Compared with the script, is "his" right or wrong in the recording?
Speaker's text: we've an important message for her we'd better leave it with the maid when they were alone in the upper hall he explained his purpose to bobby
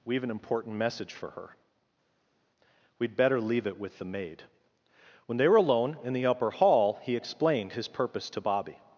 right